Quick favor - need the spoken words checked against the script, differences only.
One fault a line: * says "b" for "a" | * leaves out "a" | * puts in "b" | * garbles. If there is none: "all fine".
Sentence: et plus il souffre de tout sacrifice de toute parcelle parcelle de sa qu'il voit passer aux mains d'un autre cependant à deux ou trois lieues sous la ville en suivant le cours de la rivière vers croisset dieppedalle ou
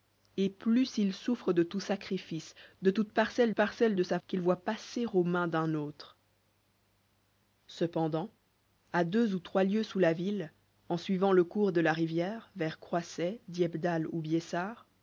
all fine